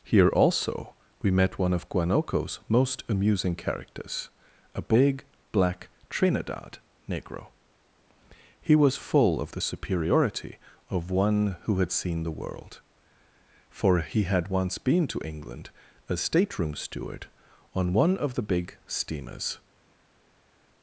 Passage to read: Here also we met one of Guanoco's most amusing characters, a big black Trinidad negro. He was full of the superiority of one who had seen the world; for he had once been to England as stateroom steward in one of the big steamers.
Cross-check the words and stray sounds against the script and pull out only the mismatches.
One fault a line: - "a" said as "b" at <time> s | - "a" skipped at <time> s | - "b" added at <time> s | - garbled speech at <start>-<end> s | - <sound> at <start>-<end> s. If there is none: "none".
- "in" said as "on" at 17.7 s